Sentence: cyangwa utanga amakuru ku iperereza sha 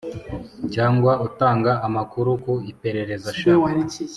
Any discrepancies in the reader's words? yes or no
no